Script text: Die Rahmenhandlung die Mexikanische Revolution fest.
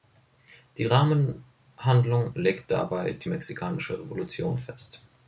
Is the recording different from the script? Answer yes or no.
yes